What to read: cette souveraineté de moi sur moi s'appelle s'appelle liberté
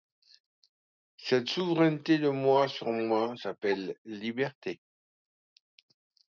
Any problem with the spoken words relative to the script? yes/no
yes